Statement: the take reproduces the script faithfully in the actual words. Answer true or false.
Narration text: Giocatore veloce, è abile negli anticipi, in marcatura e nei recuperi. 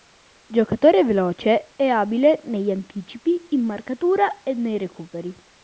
true